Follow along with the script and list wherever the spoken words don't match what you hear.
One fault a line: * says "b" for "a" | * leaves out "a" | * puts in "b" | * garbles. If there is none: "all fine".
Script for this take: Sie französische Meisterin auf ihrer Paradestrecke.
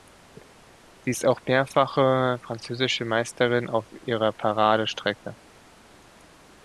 * puts in "ist auch mehrfache"